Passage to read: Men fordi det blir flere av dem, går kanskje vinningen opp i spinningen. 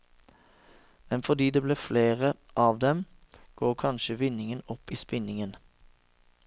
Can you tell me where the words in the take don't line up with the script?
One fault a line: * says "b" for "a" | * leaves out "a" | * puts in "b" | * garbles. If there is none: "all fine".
all fine